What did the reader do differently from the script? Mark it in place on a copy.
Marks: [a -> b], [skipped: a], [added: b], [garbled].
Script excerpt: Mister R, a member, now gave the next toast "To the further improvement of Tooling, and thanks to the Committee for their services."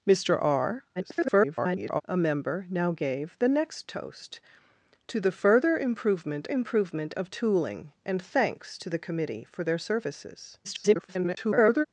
Mister R, [garbled] a member, now gave the next toast "To the further improvement [added: improvement] of Tooling, and thanks to the Committee for their services." [garbled]